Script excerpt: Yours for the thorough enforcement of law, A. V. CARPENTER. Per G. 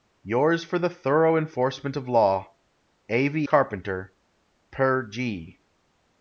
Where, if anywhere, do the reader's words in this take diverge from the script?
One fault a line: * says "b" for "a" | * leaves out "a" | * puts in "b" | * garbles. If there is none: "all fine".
all fine